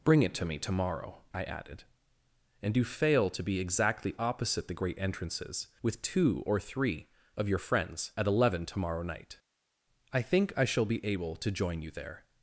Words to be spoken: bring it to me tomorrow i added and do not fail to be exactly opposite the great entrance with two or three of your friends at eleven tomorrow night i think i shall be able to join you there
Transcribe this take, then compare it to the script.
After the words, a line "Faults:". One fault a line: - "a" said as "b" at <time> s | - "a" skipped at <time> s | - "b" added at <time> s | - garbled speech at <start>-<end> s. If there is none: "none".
bring it to me tomorrow i added and do fail to be exactly opposite the great entrances with two or three of your friends at eleven tomorrow night i think i shall be able to join you there
Faults:
- "not" skipped at 2.8 s
- "entrance" said as "entrances" at 5.0 s